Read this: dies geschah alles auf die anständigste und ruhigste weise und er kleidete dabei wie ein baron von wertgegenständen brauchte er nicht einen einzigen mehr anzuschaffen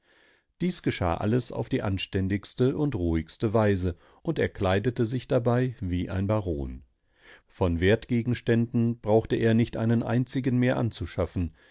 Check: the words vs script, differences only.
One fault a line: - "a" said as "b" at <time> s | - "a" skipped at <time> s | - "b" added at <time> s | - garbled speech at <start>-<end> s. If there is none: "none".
- "sich" added at 5.1 s